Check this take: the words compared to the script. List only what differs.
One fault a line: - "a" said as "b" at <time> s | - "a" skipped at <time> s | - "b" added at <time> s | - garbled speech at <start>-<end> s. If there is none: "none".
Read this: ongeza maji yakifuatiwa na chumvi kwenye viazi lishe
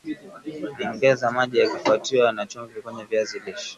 none